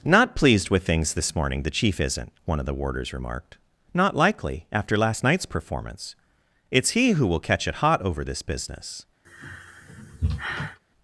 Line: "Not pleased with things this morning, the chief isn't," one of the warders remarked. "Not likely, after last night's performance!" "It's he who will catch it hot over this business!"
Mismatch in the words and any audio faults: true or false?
true